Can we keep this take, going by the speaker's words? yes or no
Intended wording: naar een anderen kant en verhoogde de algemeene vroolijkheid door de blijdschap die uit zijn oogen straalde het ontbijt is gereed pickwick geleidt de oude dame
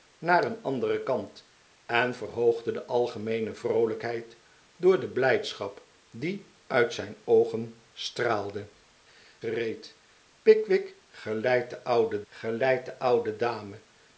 no